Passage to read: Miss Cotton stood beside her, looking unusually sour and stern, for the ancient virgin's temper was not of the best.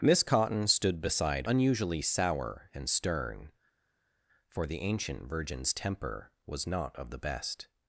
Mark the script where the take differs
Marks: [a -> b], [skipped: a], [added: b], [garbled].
Miss Cotton stood beside [skipped: her, looking] unusually sour and stern, for the ancient virgin's temper was not of the best.